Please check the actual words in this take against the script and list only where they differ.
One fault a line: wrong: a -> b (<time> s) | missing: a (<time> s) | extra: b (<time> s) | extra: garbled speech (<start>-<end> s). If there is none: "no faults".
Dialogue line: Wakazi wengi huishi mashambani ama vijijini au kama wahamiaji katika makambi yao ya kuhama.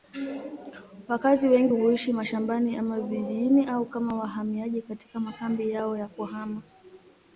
no faults